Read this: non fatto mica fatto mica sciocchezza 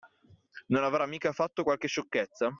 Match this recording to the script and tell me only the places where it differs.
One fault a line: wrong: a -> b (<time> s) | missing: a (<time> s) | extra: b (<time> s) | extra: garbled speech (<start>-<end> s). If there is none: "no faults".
wrong: fatto -> avrà (0.8 s)
wrong: mica -> qualche (1.6 s)